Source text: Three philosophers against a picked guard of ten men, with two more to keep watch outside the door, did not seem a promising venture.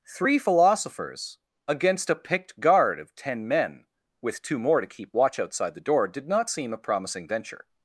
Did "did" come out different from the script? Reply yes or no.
no